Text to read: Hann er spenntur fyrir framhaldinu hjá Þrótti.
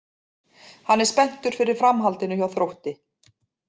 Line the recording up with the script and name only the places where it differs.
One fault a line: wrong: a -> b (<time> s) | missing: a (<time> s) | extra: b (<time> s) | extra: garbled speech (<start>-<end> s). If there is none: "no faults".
no faults